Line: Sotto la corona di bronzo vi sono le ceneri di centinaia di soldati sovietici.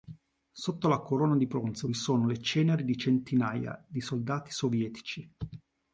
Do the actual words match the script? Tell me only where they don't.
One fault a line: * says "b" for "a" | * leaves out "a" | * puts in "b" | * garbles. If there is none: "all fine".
all fine